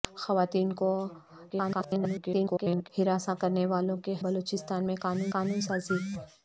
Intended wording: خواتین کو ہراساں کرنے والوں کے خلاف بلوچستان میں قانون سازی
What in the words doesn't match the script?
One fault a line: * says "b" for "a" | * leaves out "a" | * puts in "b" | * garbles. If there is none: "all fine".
* garbles
* leaves out "خلاف"
* puts in "قانون"